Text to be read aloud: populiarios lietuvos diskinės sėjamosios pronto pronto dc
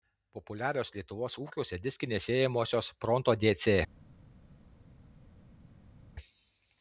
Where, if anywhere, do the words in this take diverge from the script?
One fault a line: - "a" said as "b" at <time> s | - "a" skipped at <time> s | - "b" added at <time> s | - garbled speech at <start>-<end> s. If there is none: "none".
- "ūkiuose" added at 1.4 s
- "pronto" skipped at 3.4 s